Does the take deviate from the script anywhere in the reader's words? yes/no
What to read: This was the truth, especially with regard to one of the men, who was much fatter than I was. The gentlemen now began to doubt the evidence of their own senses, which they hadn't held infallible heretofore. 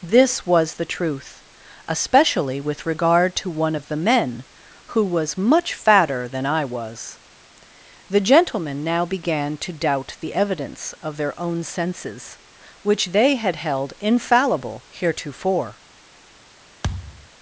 yes